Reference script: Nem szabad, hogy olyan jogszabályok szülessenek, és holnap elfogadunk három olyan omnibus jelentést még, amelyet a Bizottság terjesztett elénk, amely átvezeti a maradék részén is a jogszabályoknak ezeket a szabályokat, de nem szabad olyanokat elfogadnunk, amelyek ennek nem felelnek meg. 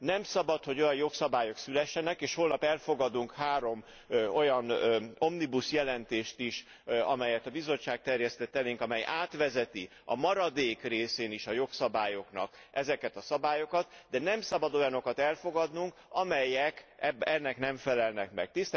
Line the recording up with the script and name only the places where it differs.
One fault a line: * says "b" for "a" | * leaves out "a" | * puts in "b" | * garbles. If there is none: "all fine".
* says "is" for "még"